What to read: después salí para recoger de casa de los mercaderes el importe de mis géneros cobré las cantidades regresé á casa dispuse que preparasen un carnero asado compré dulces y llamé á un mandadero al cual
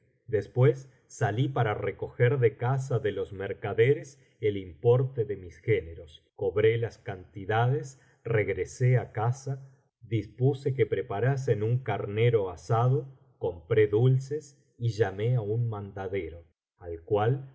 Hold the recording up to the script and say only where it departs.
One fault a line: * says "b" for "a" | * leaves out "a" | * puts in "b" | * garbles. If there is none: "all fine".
all fine